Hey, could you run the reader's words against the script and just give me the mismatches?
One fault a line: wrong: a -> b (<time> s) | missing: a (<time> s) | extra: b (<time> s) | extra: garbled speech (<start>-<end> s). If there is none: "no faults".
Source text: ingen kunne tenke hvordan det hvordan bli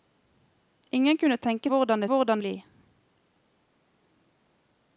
no faults